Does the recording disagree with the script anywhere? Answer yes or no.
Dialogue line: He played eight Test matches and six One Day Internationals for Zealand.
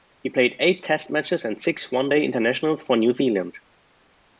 yes